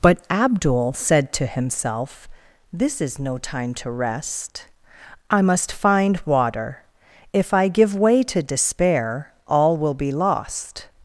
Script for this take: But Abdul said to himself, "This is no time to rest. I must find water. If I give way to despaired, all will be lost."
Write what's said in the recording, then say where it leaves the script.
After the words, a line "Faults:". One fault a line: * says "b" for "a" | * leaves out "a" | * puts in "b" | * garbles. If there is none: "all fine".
But Abdul said to himself, "This is no time to rest. I must find water. If I give way to despair, all will be lost."
Faults:
* says "despair" for "despaired"